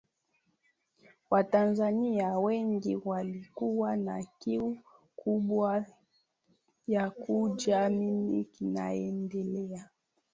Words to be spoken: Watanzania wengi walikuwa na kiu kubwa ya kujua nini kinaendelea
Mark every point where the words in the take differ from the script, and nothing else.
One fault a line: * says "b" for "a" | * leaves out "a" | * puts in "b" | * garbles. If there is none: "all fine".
all fine